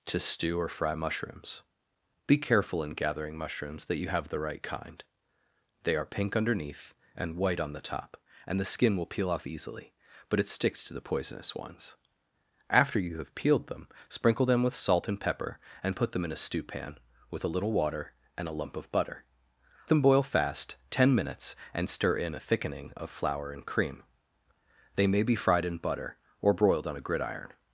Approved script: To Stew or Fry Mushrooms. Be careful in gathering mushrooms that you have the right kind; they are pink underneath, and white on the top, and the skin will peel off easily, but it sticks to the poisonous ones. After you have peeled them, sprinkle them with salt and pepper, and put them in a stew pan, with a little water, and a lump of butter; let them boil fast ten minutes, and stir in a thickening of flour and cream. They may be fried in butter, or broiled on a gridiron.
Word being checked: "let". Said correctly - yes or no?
no